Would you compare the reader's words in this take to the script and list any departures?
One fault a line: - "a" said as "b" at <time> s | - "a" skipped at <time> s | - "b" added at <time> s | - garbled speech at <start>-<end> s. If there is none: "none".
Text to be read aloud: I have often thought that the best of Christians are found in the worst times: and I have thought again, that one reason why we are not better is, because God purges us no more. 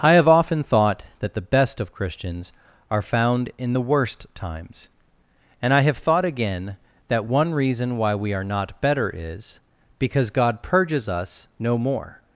none